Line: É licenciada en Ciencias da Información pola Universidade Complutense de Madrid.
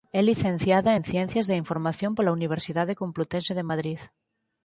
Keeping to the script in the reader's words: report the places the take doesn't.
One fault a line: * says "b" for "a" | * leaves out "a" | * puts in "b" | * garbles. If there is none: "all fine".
all fine